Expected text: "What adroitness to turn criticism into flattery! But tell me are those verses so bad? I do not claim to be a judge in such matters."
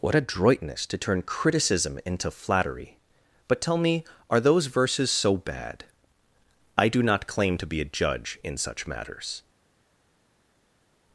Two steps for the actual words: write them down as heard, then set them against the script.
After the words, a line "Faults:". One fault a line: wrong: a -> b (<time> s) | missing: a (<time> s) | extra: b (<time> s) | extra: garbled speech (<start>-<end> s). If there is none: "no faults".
"What adroitness to turn criticism into flattery! But tell me are those verses so bad? I do not claim to be a judge in such matters."
Faults:
no faults